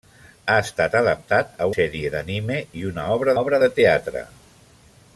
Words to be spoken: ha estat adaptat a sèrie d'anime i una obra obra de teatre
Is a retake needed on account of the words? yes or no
no